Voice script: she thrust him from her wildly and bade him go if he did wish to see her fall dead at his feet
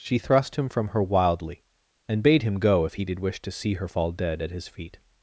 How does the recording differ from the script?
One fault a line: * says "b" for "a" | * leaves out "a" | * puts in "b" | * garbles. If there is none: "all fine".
all fine